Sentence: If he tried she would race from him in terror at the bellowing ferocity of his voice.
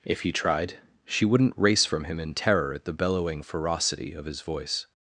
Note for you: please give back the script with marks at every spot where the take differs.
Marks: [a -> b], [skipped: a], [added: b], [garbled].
If he tried she [would -> wouldn't] race from him in terror at the bellowing ferocity of his voice.